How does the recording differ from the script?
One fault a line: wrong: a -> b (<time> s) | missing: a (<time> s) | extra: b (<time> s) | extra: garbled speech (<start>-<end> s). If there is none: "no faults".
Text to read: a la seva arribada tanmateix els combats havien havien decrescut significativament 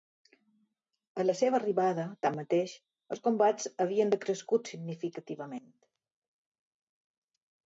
missing: havien (4.1 s)